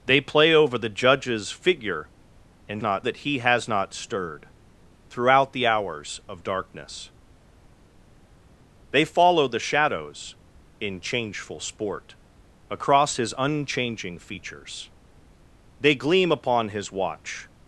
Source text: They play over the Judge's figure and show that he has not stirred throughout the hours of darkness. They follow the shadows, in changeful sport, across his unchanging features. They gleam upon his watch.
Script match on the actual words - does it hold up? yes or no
no